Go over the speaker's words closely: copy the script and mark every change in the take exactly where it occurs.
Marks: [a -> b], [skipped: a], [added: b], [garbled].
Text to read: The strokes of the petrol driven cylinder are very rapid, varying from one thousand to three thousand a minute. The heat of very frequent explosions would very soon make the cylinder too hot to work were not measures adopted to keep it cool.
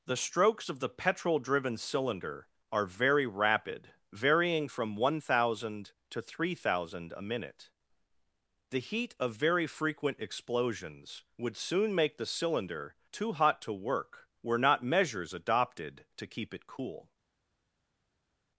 The strokes of the petrol driven cylinder are very rapid, varying from one thousand to three thousand a minute. The heat of very frequent explosions would [skipped: very] soon make the cylinder too hot to work were not measures adopted to keep it cool.